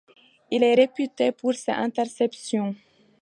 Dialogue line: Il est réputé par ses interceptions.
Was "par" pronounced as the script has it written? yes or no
no